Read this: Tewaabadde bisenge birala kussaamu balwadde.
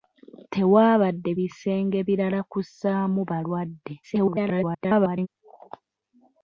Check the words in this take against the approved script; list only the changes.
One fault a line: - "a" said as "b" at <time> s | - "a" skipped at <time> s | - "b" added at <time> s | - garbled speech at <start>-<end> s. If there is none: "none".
- garbled speech at 4.0-5.3 s